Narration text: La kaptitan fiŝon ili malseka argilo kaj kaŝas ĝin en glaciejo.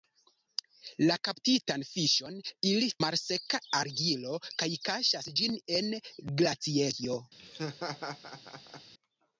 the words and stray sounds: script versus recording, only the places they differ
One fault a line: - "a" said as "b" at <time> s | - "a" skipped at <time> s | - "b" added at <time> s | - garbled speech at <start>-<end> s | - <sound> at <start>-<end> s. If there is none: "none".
- laugh at 7.4-8.9 s